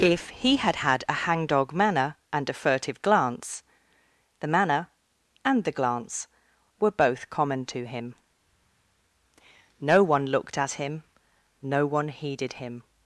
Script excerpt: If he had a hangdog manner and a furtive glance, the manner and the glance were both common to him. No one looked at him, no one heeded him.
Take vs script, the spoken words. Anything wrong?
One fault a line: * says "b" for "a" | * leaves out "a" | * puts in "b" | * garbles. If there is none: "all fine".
* puts in "had"